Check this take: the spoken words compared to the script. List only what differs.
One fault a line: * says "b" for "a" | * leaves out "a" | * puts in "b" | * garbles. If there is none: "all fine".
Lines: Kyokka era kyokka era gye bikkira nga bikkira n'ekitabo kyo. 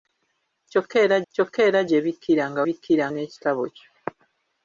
all fine